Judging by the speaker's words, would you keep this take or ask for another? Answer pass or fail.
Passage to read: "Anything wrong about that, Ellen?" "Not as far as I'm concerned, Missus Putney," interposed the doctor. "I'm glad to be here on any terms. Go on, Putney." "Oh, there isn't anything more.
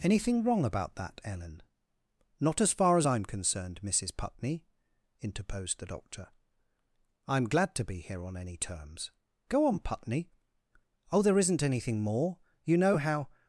fail